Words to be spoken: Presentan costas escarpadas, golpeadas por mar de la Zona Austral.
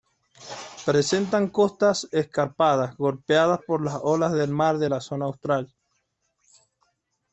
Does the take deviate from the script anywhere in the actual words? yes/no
yes